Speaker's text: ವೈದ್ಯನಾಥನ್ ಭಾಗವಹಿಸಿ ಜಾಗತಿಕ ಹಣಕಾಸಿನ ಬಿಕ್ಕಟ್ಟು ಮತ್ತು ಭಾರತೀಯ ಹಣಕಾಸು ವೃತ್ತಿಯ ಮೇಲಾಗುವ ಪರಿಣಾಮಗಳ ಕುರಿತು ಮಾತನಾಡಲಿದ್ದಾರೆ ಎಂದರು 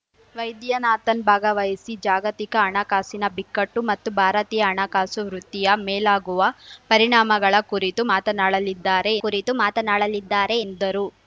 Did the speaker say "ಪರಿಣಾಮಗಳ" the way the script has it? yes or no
yes